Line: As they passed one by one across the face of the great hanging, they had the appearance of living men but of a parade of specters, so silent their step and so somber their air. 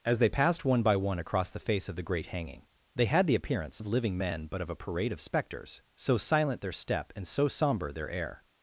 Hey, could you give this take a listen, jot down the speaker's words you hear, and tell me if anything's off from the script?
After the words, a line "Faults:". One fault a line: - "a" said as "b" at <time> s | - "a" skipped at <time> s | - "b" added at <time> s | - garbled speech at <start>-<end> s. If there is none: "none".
As they passed one by one across the face of the great hanging, they had the appearance of living men but of a parade of specters, so silent their step and so somber their air.
Faults:
none